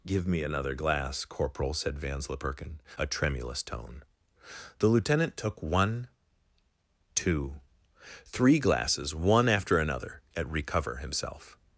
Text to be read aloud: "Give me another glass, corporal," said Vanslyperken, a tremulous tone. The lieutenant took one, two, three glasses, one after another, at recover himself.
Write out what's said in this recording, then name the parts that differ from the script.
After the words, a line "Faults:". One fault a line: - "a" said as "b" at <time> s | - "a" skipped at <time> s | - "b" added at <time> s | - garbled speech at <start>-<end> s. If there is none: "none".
"Give me another glass, corporal," said Vanslyperken, a tremulous tone. The lieutenant took one, two, three glasses, one after another, at recover himself.
Faults:
none